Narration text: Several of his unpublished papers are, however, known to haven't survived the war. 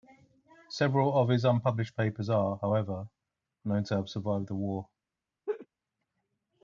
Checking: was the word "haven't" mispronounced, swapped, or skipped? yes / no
yes